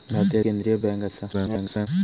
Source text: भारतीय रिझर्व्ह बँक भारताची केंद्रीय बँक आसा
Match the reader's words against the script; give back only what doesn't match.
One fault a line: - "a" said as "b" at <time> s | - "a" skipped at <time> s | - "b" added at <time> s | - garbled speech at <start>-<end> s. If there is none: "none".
- "रिझर्व्ह बँक भारताची" skipped at 0.4 s
- garbled speech at 1.3-1.9 s